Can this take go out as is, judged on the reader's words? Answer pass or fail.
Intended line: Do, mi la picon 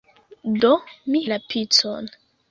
pass